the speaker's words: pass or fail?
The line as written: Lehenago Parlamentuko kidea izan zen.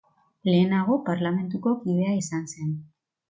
pass